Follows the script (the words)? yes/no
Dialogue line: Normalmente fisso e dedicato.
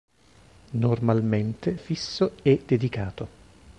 yes